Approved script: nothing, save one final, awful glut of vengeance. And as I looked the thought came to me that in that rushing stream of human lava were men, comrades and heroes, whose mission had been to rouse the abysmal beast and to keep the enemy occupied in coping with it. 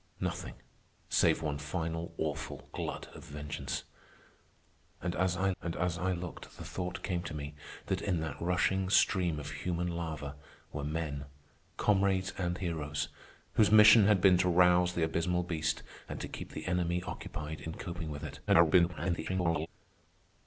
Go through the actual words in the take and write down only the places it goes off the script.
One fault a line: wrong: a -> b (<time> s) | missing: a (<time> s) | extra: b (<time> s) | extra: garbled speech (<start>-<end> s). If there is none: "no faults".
extra: and as I (5.6 s)
extra: garbled speech (18.5-19.7 s)